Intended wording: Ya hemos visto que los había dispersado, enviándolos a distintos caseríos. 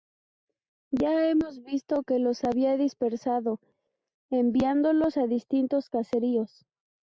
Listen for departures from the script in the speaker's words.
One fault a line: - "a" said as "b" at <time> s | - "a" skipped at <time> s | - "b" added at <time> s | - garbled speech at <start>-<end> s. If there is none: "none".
none